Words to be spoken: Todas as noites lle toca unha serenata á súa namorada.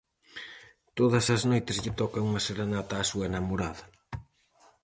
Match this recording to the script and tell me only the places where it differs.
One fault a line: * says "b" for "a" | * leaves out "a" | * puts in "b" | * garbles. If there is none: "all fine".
all fine